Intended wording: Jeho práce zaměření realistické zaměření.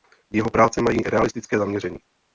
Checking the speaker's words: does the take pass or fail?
fail